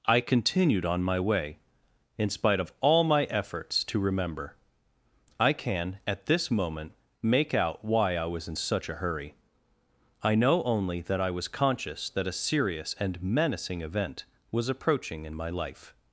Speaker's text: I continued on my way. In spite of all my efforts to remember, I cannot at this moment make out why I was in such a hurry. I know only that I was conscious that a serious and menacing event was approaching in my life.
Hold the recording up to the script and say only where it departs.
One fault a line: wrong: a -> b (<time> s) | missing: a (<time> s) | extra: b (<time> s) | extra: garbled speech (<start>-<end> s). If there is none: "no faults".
wrong: cannot -> can (5.5 s)